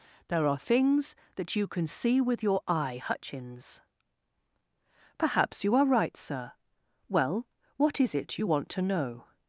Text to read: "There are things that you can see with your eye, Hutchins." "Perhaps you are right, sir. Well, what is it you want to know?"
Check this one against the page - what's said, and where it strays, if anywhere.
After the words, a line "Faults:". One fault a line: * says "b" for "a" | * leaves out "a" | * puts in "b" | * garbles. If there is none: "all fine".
"There are things that you can see with your eye, Hutchins." "Perhaps you are right, sir. Well, what is it you want to know?"
Faults:
all fine